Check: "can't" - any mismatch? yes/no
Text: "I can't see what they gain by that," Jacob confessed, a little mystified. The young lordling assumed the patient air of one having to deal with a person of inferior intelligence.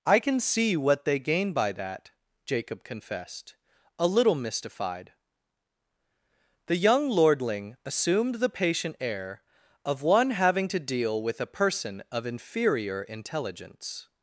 yes